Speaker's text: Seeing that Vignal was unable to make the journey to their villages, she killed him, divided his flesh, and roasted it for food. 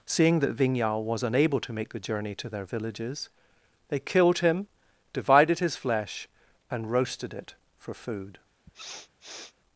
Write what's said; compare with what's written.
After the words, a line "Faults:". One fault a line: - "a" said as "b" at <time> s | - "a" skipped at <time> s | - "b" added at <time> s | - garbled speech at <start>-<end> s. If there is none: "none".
Seeing that Vignal was unable to make the journey to their villages, they killed him, divided his flesh, and roasted it for food.
Faults:
- "she" said as "they" at 3.9 s